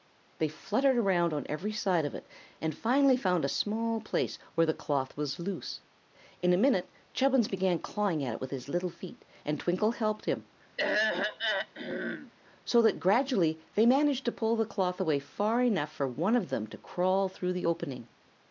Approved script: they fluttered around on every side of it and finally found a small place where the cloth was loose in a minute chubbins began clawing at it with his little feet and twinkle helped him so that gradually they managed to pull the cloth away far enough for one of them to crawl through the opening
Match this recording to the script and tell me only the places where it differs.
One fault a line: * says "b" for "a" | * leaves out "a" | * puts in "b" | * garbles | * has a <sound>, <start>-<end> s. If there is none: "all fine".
* has a throat clearing, 10.8-12.3 s